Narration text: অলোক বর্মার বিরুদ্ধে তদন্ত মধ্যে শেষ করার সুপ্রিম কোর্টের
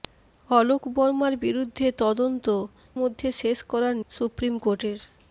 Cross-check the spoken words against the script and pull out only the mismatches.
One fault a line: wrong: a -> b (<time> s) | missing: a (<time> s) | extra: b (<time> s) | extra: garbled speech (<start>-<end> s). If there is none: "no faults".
no faults